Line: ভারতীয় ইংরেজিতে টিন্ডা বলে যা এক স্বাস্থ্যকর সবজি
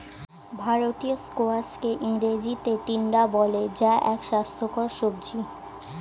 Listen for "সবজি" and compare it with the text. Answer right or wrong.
right